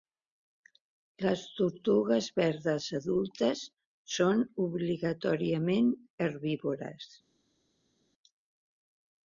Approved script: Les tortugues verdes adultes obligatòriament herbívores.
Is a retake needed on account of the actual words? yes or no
yes